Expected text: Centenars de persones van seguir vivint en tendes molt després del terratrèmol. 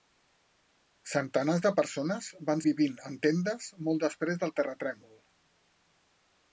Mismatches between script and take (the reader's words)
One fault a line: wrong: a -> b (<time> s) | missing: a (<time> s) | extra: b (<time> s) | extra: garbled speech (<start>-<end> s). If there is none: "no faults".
missing: seguir (2.6 s)